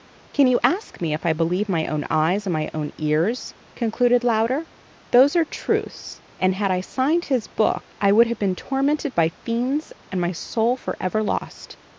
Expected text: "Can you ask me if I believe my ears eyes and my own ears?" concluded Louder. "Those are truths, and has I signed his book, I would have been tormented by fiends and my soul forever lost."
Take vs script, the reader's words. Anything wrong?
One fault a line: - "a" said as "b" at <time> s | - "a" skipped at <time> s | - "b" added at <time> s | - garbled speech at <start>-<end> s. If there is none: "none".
- "ears" said as "own" at 1.9 s
- "has" said as "had" at 6.5 s